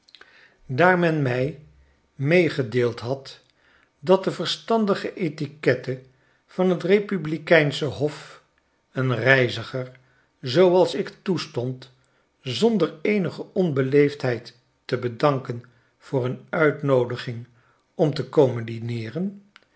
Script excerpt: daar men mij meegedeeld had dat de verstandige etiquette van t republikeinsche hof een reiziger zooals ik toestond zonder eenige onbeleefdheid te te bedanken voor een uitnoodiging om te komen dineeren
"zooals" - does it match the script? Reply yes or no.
yes